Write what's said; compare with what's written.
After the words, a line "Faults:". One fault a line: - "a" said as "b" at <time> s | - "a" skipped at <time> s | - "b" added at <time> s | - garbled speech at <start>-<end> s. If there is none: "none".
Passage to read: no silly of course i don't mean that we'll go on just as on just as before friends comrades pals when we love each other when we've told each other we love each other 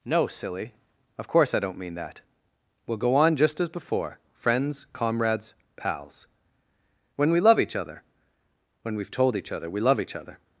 no silly of course i don't mean that we'll go on just as before friends comrades pals when we love each other when we've told each other we love each other
Faults:
- "on just as" skipped at 3.7 s